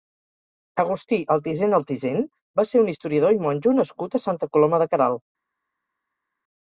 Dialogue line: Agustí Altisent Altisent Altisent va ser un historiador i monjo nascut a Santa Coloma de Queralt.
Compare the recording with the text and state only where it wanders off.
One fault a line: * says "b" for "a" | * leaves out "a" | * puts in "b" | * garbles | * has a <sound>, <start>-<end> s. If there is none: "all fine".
* leaves out "Altisent"